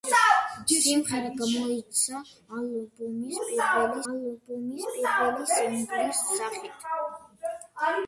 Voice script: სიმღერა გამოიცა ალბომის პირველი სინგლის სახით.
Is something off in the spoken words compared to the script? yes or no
yes